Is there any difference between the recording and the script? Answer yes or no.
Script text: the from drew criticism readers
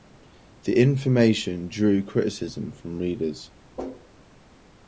yes